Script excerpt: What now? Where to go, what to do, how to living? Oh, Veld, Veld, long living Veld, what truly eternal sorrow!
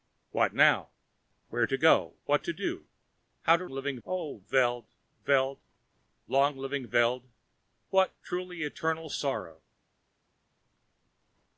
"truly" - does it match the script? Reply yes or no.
yes